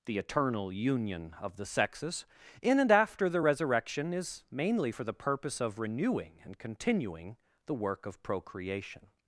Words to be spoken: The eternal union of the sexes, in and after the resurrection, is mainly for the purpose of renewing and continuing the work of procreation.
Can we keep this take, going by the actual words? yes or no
yes